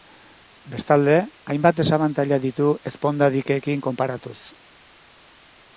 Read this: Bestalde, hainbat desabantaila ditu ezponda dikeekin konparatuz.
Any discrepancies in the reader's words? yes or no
no